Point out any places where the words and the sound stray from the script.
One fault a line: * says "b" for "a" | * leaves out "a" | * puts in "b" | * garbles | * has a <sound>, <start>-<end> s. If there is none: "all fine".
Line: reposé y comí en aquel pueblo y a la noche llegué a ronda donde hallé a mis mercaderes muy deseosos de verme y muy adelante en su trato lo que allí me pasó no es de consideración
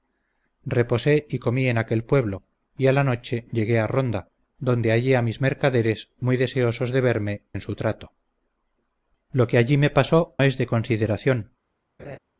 * leaves out "y muy adelante"
* leaves out "no"
* has a laugh, 12.0-12.2 s